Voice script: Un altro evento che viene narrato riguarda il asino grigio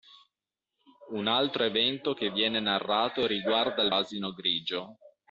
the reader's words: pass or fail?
pass